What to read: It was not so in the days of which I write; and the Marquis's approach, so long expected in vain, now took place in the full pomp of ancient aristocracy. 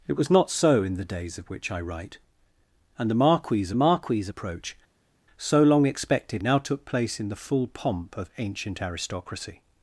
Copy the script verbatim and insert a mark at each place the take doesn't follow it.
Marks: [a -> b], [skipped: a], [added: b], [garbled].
It was not so in the days of which I write; and the Marquis's [added: Marquis's] approach, so long expected [skipped: in vain,] now took place in the full pomp of ancient aristocracy.